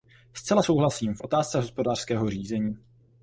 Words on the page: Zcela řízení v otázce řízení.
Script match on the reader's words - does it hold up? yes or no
no